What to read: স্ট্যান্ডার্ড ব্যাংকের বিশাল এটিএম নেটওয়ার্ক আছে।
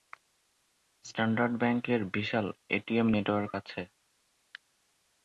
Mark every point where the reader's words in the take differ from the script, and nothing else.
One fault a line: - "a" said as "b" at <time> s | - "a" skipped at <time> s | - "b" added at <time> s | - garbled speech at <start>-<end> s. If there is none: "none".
none